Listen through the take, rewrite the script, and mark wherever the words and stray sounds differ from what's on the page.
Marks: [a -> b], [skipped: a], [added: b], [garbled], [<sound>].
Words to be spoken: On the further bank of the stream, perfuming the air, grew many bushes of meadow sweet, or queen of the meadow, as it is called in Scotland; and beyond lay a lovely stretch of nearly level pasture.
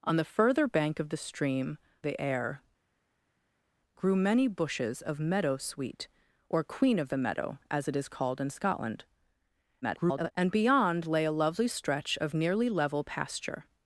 On the further bank of the stream, [skipped: perfuming] the air, grew many bushes of meadow sweet, or queen of the meadow, as it is called in Scotland; [garbled] and beyond lay a lovely stretch of nearly level pasture.